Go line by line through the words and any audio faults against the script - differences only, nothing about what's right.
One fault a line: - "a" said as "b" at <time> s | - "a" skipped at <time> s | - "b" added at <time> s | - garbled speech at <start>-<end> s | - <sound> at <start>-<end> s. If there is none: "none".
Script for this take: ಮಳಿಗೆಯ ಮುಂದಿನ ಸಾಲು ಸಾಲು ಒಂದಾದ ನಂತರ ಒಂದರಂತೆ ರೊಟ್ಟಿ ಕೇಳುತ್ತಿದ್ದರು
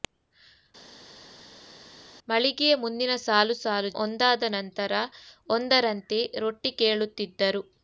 none